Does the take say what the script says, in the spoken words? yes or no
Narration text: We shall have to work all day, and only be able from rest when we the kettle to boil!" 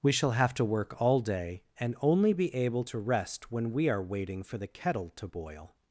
no